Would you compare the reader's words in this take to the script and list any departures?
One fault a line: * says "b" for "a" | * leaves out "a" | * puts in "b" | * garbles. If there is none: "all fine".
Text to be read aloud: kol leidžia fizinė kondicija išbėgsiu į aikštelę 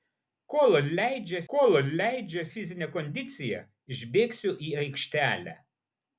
* puts in "kol leidžia"